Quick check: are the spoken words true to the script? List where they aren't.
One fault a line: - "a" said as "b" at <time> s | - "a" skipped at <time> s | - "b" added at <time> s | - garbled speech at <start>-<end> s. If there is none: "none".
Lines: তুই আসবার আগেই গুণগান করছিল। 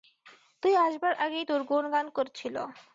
- "তোর" added at 1.4 s